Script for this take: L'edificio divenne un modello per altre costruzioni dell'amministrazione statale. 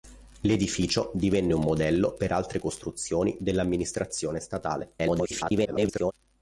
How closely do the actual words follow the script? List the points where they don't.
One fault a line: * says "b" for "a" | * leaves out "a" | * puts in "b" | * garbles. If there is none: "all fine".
* garbles